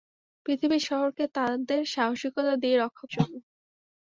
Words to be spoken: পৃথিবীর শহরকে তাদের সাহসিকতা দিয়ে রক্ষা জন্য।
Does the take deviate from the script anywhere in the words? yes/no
no